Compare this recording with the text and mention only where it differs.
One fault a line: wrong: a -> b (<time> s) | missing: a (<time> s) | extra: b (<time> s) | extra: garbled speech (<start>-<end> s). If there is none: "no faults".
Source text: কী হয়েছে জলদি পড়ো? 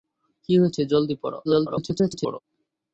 extra: garbled speech (1.4-2.4 s)